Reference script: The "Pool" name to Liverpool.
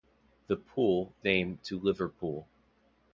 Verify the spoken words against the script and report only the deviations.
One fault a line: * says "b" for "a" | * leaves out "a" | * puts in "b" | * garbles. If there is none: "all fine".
all fine